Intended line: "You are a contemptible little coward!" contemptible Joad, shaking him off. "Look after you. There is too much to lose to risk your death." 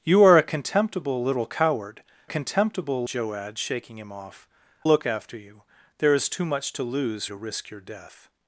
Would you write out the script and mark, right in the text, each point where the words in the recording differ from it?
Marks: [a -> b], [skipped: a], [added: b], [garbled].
"You are a contemptible little coward!" contemptible Joad, shaking him off. "Look after you. There is too much to lose to risk your death."